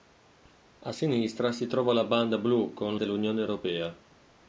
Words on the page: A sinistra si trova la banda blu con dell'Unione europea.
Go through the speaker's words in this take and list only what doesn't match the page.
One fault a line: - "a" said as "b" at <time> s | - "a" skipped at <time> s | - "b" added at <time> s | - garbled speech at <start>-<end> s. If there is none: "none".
none